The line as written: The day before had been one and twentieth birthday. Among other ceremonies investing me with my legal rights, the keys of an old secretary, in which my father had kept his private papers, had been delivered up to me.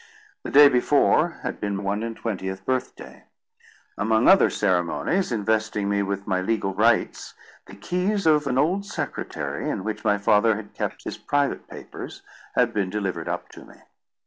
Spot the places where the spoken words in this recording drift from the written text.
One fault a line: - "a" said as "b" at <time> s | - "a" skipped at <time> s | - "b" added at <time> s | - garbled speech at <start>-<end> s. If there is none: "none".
none